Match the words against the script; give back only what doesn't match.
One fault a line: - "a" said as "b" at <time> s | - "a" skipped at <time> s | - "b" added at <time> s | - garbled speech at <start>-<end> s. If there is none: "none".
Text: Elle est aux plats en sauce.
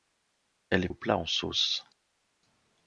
none